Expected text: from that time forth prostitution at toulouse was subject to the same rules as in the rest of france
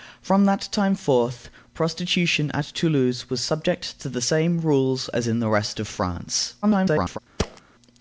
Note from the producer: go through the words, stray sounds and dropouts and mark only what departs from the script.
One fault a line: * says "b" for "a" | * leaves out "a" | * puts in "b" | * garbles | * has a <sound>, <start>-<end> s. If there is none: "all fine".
* garbles
* has a thud, 7.4-7.6 s